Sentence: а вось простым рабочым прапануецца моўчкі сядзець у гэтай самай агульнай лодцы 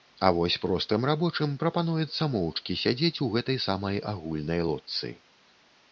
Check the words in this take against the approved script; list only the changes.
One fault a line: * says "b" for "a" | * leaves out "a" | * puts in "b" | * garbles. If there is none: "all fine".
all fine